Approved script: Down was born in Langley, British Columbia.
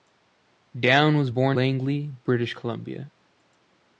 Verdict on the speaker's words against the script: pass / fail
fail